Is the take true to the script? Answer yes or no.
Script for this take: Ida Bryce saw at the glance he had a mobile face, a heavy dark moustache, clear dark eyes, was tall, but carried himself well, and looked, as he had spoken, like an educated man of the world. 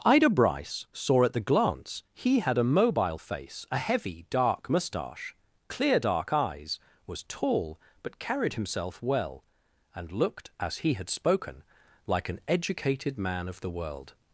yes